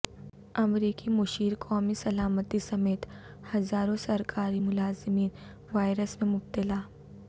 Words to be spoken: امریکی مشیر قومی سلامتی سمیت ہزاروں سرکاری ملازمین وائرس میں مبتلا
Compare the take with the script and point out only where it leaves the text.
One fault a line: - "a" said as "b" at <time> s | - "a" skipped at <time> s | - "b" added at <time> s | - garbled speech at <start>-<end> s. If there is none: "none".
none